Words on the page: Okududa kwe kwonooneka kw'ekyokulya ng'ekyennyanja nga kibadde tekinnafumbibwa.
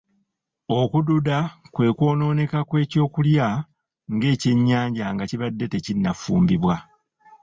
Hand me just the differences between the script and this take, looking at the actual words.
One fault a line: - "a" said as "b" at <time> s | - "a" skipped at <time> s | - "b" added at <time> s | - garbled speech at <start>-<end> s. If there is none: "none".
none